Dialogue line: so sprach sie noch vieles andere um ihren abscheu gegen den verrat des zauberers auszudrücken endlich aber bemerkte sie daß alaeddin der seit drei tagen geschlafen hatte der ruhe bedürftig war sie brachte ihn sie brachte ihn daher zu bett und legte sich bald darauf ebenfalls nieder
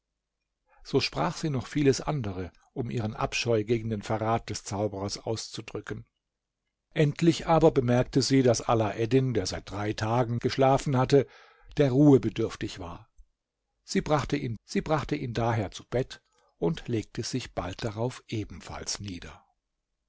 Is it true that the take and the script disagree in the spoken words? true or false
false